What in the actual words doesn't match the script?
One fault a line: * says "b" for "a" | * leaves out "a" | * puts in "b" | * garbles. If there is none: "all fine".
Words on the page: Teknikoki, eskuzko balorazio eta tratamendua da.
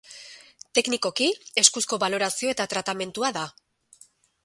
all fine